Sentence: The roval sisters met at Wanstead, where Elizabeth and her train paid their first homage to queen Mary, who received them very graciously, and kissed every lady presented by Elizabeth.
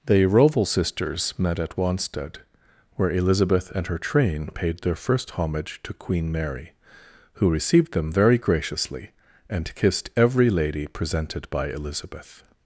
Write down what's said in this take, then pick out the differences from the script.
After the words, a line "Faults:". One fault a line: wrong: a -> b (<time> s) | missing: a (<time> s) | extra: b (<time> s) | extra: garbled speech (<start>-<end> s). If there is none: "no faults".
The roval sisters met at Wanstead, where Elizabeth and her train paid their first homage to queen Mary, who received them very graciously, and kissed every lady presented by Elizabeth.
Faults:
no faults